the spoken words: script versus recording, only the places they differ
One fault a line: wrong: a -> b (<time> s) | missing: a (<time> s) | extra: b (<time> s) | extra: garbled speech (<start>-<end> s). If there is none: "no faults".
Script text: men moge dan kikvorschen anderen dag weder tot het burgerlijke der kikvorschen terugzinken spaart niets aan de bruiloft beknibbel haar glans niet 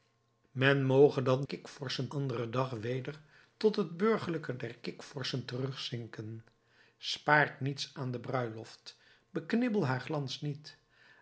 no faults